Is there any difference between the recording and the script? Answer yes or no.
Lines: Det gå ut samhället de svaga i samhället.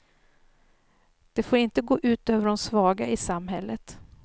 yes